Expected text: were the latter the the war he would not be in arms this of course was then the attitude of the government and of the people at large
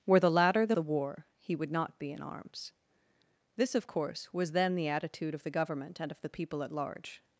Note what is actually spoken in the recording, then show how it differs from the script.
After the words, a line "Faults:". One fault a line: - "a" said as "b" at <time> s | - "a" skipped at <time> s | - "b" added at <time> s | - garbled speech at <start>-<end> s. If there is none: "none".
were the latter the the war he would not be in arms this of course was then the attitude of the government and of the people at large
Faults:
none